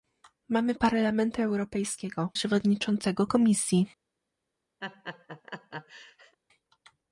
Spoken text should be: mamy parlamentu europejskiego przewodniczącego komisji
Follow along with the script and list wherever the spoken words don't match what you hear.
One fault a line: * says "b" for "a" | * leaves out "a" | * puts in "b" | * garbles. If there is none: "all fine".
all fine